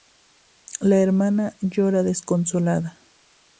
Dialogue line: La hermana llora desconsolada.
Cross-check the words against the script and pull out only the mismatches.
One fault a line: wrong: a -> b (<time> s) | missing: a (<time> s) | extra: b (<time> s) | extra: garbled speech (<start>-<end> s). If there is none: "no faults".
no faults